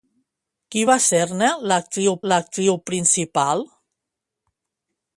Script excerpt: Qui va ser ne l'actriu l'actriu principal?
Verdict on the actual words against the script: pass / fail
pass